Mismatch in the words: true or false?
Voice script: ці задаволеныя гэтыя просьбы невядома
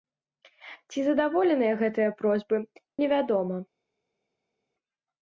false